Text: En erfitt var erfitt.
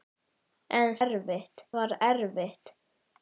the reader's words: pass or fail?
pass